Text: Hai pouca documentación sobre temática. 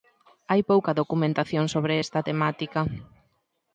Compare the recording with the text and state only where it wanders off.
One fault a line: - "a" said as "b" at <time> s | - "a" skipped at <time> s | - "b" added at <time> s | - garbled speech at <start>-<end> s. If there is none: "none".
- "esta" added at 2.0 s